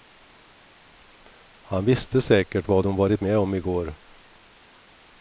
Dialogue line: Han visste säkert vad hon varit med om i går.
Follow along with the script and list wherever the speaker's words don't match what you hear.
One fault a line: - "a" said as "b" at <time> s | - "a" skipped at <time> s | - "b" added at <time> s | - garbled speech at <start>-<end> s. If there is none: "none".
none